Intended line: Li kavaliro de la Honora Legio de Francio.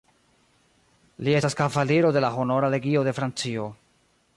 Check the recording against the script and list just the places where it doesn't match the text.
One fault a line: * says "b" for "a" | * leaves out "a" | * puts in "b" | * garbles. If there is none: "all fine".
* puts in "estas"